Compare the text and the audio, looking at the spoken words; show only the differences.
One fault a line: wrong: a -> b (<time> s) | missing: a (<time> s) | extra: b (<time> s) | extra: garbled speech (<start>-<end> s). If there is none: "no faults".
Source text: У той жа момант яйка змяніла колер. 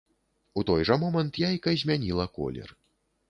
no faults